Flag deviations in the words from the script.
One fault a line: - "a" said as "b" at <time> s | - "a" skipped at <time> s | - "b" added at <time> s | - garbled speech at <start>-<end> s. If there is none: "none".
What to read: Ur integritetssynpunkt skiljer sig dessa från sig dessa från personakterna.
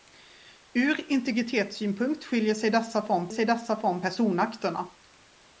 none